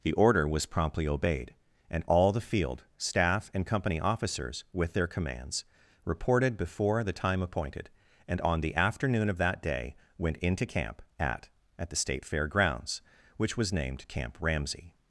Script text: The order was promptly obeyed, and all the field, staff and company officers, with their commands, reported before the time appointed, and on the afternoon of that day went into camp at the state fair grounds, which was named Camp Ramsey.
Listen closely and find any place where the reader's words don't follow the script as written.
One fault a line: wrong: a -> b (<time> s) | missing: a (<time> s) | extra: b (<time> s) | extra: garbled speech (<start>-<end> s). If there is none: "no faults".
extra: at (11.8 s)